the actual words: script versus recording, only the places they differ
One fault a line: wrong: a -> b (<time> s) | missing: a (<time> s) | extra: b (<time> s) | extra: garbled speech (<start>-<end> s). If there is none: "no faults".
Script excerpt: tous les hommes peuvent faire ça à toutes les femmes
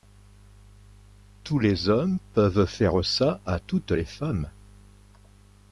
no faults